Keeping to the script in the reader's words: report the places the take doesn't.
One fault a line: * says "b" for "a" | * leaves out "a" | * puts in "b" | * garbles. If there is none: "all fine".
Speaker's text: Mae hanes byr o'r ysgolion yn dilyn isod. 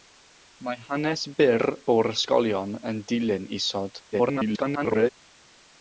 * garbles